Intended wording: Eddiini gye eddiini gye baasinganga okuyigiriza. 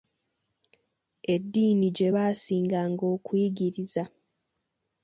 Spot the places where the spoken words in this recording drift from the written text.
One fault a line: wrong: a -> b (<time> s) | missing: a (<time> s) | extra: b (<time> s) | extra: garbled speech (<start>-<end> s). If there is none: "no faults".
missing: eddiini gye (2.1 s)